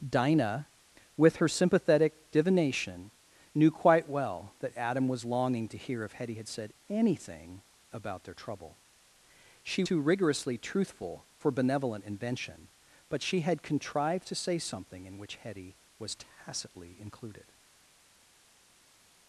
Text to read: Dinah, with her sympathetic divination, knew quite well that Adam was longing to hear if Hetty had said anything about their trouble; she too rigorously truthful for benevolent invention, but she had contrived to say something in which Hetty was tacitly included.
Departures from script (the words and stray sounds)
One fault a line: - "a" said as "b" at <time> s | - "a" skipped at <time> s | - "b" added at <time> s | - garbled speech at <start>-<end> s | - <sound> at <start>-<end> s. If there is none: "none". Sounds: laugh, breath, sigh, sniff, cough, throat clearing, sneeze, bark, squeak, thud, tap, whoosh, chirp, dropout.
none